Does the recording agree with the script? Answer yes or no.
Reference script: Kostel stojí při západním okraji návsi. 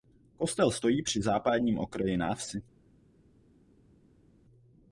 yes